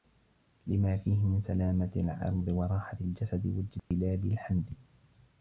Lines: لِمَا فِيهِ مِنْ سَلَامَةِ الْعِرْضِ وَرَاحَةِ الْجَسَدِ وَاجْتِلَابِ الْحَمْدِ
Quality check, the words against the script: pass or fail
pass